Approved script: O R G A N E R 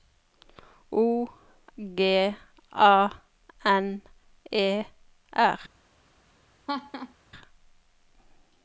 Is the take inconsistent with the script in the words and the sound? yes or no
yes